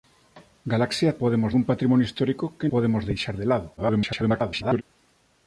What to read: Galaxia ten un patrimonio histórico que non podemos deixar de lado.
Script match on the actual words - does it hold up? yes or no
no